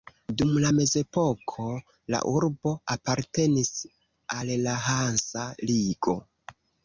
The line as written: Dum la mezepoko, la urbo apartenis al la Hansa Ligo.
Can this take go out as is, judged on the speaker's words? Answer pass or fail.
pass